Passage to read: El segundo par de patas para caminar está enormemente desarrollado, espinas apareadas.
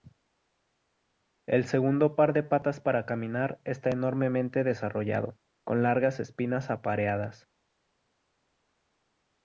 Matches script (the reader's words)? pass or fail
fail